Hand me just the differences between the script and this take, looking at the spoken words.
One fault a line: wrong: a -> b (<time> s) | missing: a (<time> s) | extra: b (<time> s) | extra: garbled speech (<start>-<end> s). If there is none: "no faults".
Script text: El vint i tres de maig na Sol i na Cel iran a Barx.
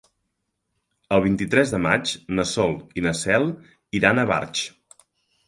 no faults